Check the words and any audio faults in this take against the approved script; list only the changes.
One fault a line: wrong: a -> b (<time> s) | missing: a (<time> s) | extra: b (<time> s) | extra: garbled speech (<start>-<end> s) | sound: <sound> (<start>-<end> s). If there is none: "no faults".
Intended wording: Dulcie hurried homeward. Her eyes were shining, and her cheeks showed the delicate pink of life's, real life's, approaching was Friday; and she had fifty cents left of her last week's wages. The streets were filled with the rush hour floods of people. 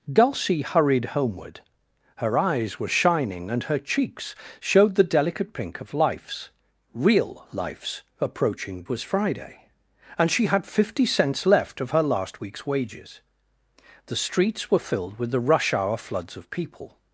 no faults